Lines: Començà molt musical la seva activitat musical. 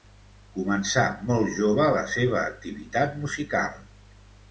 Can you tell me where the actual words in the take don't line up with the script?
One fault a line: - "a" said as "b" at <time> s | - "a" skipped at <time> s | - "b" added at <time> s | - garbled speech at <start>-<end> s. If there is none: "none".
- "musical" said as "jove" at 1.6 s